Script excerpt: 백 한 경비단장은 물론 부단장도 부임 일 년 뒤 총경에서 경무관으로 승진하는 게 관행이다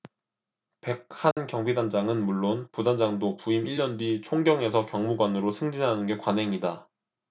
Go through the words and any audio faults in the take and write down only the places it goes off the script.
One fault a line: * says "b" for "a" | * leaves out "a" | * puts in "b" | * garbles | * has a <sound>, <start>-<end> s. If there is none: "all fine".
* has a dropout, 1.3-1.4 s